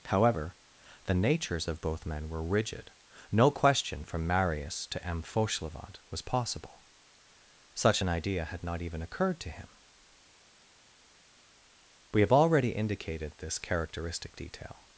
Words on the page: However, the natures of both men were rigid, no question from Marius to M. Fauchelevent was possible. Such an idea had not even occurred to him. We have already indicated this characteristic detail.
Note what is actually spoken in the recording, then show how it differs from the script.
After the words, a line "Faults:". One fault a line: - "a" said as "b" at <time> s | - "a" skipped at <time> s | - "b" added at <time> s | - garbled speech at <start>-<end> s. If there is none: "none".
However, the natures of both men were rigid, no question from Marius to M. Fauchelevent was possible. Such an idea had not even occurred to him. We have already indicated this characteristic detail.
Faults:
none